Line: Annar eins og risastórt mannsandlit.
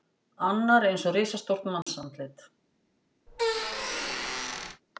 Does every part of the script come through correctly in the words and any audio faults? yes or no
no